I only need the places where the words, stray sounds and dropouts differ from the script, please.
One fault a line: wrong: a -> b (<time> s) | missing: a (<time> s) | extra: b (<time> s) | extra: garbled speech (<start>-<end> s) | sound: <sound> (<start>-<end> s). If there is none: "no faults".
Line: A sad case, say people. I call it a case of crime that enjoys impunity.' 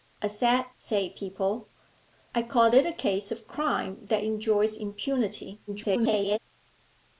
missing: case (0.7 s)
extra: garbled speech (5.7-6.4 s)